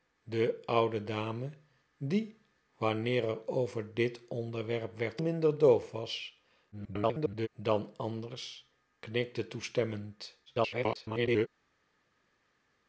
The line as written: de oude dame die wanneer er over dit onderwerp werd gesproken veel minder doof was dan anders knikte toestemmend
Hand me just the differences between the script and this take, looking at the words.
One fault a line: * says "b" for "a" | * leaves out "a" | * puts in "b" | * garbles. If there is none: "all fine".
* leaves out "gesproken veel"
* garbles
* garbles